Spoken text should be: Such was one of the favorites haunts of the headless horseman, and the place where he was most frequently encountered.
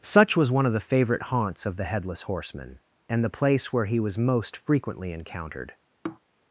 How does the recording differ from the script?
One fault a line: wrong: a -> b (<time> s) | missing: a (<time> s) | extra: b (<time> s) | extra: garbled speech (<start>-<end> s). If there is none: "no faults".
wrong: favorites -> favorite (0.8 s)